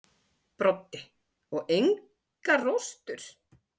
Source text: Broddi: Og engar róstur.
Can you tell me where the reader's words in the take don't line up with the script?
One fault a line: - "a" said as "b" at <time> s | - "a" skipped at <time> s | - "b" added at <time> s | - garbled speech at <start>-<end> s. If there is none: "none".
none